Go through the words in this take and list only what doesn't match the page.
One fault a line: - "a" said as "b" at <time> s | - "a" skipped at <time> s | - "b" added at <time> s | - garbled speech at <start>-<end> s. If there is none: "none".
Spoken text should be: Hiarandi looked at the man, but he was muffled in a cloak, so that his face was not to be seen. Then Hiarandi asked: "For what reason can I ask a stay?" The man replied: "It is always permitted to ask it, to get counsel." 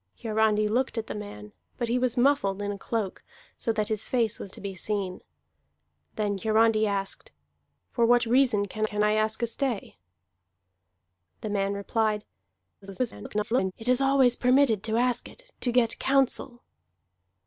- "not" skipped at 4.5 s
- "can" added at 8.8 s
- garbled speech at 12.8-13.7 s